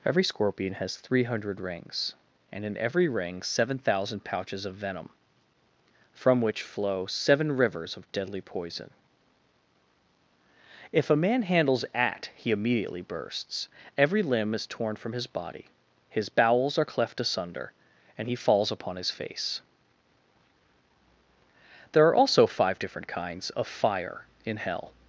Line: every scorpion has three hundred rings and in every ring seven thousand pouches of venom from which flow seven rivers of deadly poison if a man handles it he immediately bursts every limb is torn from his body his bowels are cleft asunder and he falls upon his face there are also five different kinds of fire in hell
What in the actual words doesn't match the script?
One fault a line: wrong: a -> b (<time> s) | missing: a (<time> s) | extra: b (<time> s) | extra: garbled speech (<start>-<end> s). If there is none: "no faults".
wrong: it -> at (11.9 s)